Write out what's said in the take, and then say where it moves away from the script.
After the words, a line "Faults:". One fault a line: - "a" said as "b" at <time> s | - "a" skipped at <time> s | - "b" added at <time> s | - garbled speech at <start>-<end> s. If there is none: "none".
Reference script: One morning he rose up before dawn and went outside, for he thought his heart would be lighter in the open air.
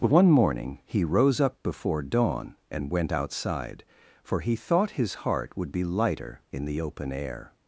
One morning he rose up before dawn and went outside, for he thought his heart would be lighter in the open air.
Faults:
none